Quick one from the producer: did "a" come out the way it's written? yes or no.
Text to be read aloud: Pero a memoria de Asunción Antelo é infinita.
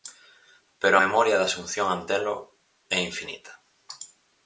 no